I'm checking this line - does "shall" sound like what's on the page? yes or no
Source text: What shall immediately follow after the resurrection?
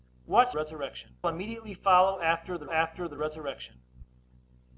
no